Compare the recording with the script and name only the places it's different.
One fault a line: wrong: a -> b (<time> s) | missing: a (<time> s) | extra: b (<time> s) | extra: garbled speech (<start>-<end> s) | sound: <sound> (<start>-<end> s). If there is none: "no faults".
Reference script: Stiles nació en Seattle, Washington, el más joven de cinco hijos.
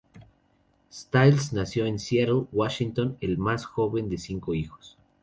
no faults